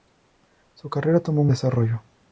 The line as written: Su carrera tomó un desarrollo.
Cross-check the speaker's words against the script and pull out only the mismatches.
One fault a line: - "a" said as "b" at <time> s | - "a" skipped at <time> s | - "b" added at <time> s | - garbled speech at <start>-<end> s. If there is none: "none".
none